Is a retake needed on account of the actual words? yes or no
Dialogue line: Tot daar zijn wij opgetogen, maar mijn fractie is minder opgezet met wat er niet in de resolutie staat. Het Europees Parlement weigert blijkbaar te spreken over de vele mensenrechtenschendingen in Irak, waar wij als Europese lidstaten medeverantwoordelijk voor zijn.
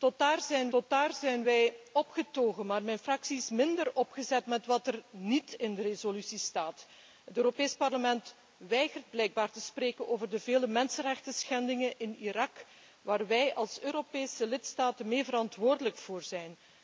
yes